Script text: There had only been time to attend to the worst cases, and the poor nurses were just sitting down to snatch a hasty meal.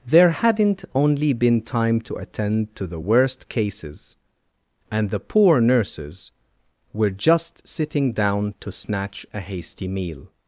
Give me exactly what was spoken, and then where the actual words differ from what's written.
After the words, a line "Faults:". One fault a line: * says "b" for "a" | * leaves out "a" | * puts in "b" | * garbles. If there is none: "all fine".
There hadn't only been time to attend to the worst cases, and the poor nurses were just sitting down to snatch a hasty meal.
Faults:
* says "hadn't" for "had"